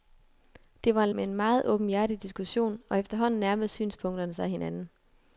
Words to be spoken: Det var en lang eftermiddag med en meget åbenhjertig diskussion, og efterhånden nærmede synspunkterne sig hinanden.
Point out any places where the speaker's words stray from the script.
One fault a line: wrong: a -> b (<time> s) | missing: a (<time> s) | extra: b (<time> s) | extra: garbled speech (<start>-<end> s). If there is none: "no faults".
missing: lang eftermiddag (1.1 s)